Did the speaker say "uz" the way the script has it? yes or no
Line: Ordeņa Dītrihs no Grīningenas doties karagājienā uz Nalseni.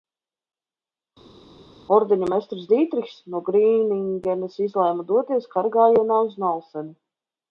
yes